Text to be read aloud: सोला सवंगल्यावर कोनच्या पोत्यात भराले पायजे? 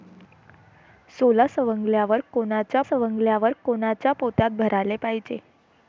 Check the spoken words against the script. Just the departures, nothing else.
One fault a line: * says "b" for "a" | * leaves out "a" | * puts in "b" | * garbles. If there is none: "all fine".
* puts in "सवंगल्यावर कोनच्या"